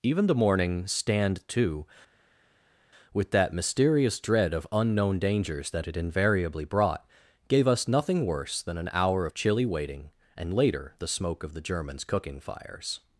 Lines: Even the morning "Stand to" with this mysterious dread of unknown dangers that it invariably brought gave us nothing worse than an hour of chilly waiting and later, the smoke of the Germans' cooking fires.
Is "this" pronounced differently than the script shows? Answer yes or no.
yes